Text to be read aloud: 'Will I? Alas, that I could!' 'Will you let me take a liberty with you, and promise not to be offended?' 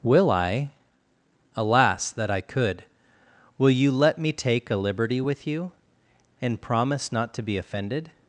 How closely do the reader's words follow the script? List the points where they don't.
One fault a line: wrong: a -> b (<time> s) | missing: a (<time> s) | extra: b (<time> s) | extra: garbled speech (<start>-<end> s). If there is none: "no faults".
no faults